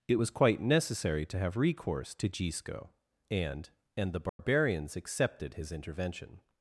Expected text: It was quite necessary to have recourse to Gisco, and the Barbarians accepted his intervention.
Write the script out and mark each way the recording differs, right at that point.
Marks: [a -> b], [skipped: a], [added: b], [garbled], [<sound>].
It was quite necessary to have recourse to Gisco, and [added: and] the Barbarians [dropout] accepted his intervention.